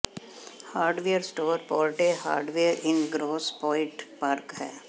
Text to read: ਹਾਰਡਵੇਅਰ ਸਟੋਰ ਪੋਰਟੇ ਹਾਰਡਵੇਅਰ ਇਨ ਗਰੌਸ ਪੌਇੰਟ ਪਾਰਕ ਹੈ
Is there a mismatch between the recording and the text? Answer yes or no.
no